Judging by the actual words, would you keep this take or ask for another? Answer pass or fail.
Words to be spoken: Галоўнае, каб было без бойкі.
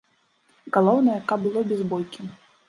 pass